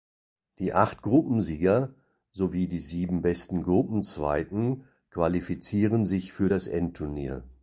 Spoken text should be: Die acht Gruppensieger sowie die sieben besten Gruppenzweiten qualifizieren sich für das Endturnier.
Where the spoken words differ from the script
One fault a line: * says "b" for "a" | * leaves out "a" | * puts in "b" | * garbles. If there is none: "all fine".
all fine